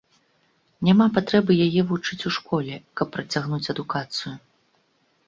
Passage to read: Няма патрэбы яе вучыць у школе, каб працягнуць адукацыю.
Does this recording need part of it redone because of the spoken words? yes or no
no